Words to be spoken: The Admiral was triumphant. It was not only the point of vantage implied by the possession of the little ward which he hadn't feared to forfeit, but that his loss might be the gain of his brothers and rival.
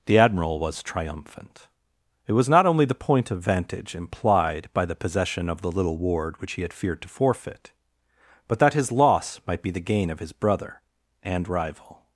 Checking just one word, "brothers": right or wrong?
wrong